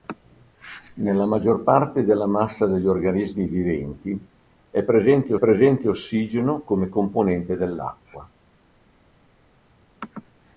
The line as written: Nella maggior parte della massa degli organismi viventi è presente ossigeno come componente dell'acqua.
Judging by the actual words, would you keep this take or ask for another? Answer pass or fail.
fail